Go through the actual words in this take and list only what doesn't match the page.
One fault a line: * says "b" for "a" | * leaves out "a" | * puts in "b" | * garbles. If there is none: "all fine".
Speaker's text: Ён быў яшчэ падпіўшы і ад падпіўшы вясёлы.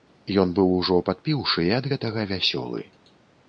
* says "ужо" for "яшчэ"
* says "гэтага" for "падпіўшы"